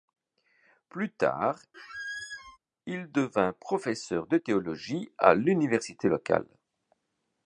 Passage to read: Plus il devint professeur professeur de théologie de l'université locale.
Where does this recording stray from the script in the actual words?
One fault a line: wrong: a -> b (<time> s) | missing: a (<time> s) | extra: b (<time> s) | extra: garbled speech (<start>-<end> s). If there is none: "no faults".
extra: tard (1.1 s)
missing: professeur (4.3 s)
wrong: de -> à (5.2 s)